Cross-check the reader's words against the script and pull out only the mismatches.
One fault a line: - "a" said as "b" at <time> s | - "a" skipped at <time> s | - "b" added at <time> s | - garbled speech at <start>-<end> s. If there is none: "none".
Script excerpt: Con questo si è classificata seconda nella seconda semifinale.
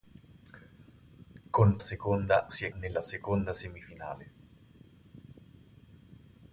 - "questo" said as "seconda" at 1.8 s
- "classificata seconda" skipped at 2.7 s